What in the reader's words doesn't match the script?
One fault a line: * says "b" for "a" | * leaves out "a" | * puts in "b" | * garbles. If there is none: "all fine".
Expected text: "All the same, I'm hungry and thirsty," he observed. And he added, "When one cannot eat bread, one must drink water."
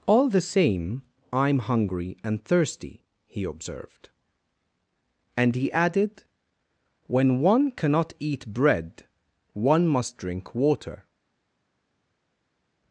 all fine